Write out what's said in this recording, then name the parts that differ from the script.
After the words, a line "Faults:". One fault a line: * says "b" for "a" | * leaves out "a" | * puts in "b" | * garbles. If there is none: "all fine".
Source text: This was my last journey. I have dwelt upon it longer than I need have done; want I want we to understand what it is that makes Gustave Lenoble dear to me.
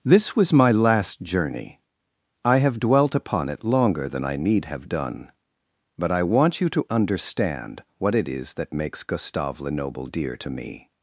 This was my last journey. I have dwelt upon it longer than I need have done; but I want you to understand what it is that makes Gustave Lenoble dear to me.
Faults:
* says "but" for "want"
* says "you" for "we"